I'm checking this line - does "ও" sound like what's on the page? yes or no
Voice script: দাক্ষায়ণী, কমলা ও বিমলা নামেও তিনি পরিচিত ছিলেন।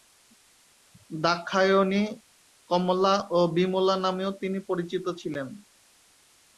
yes